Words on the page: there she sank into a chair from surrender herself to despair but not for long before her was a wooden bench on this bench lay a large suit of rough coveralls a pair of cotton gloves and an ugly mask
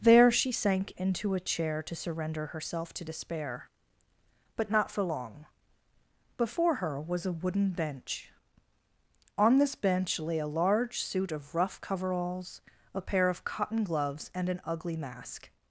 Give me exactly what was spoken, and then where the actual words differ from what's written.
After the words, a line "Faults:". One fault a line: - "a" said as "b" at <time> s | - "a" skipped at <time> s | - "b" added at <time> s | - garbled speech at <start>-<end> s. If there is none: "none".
there she sank into a chair to surrender herself to despair but not for long before her was a wooden bench on this bench lay a large suit of rough coveralls a pair of cotton gloves and an ugly mask
Faults:
- "from" said as "to" at 1.8 s